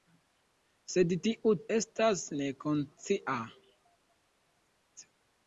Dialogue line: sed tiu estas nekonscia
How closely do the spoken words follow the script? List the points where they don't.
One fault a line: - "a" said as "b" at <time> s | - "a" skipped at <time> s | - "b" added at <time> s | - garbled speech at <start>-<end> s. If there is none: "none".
none